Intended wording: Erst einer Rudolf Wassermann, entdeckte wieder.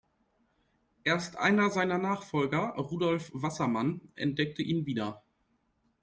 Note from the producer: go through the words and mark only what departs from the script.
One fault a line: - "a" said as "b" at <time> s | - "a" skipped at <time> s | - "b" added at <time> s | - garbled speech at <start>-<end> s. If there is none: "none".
- "seiner Nachfolger" added at 1.7 s
- "ihn" added at 4.6 s